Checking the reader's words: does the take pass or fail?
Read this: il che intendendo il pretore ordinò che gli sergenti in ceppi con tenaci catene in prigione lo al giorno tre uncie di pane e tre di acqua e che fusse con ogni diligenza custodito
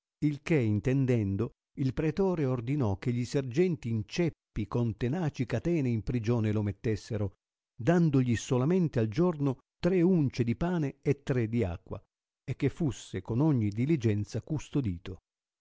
fail